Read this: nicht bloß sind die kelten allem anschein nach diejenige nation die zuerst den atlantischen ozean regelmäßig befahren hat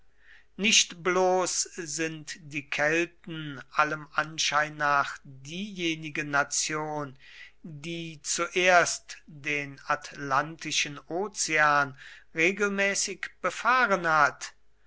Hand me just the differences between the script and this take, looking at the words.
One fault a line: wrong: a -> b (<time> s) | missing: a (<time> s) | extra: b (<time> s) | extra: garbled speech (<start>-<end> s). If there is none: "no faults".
no faults